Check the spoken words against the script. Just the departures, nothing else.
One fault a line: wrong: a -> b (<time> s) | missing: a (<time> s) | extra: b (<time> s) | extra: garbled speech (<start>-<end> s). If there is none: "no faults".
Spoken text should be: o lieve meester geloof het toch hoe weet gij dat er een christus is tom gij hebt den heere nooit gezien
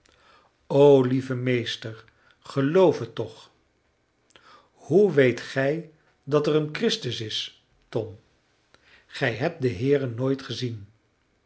no faults